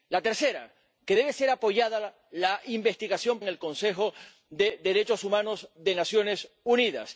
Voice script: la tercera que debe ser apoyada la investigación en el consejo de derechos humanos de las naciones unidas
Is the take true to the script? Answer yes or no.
yes